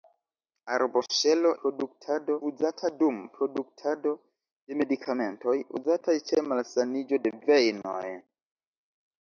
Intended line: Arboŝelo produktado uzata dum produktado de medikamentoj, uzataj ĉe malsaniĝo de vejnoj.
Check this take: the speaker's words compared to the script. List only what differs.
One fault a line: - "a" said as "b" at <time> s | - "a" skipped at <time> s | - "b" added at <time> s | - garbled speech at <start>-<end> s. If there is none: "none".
none